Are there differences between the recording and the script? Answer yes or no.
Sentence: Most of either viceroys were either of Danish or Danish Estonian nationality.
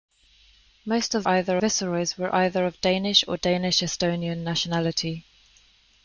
no